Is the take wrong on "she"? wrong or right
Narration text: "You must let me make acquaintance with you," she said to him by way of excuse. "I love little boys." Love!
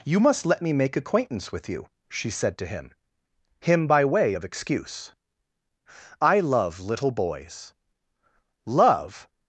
right